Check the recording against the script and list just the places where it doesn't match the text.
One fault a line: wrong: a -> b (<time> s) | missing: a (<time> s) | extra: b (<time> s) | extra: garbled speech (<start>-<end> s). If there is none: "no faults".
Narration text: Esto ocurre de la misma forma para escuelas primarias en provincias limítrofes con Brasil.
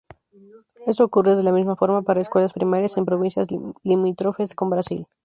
no faults